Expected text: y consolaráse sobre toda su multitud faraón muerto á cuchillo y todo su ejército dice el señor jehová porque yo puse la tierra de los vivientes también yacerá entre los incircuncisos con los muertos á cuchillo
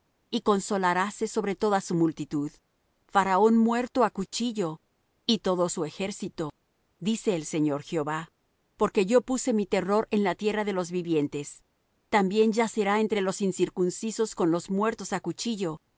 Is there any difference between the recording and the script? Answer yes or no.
yes